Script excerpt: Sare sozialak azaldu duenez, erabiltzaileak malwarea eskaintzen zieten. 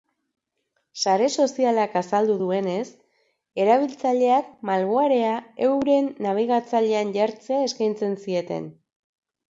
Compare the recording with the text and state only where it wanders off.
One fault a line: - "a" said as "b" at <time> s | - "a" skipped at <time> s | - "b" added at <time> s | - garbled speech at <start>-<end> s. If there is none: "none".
- "euren nabigatzailean jartzea" added at 5.7 s